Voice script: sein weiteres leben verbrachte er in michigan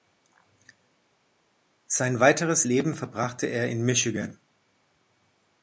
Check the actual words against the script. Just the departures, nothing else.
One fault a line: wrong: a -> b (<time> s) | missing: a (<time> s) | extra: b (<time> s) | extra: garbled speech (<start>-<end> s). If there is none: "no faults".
no faults